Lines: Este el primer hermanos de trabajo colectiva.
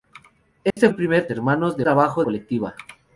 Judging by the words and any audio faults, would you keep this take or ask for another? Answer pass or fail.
fail